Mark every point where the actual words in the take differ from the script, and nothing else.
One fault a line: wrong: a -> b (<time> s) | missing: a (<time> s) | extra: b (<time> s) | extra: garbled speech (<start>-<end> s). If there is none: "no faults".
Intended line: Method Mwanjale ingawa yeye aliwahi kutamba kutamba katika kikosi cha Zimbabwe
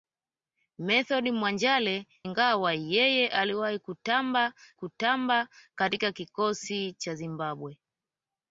no faults